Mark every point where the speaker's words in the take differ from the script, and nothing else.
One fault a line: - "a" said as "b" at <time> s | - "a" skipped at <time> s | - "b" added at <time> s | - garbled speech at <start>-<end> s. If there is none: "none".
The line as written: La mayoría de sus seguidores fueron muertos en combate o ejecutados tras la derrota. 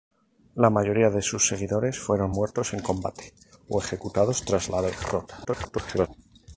- garbled speech at 5.4-6.1 s